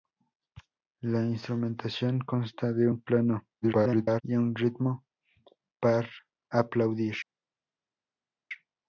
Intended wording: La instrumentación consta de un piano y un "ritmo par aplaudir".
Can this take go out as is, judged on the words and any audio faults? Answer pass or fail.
fail